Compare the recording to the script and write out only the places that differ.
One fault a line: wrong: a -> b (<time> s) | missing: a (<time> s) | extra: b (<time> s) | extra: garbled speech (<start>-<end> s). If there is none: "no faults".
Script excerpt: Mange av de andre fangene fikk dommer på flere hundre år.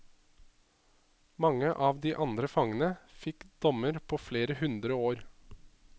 no faults